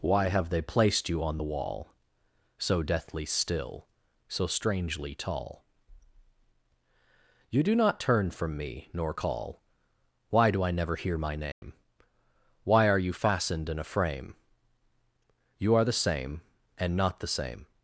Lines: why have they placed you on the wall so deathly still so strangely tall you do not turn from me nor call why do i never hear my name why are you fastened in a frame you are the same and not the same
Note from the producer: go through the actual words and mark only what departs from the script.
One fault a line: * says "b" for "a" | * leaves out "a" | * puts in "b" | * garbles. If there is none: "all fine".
all fine